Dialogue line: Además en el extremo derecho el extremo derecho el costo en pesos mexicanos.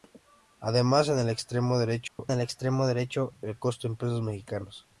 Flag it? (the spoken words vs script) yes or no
no